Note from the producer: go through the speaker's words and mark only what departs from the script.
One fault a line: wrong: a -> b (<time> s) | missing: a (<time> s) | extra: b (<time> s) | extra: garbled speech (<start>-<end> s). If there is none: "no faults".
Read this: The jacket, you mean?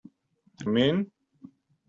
missing: jacket you (0.7 s)